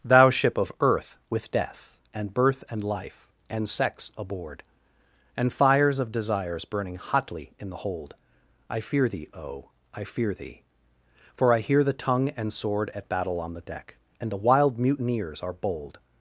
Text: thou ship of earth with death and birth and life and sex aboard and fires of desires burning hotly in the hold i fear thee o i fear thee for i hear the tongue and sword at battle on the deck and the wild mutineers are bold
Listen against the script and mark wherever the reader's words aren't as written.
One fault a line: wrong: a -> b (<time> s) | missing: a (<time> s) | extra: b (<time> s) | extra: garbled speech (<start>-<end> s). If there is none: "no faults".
no faults